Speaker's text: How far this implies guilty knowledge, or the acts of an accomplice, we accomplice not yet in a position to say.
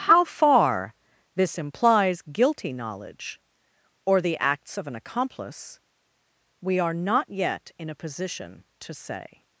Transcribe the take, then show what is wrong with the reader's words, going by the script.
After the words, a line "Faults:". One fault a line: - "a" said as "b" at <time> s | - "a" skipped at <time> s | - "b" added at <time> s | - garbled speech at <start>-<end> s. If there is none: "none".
How far this implies guilty knowledge, or the acts of an accomplice, we are not yet in a position to say.
Faults:
- "accomplice" said as "are" at 6.8 s